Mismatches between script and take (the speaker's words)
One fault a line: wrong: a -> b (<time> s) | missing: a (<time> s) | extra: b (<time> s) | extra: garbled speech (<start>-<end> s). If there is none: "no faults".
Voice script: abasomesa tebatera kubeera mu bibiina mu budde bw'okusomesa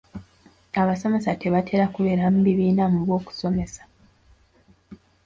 missing: budde (3.0 s)